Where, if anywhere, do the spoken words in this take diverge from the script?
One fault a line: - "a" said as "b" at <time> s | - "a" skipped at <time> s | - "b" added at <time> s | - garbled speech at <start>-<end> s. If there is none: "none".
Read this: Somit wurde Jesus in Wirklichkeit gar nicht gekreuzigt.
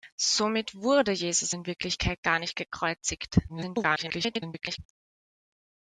- garbled speech at 3.5-4.8 s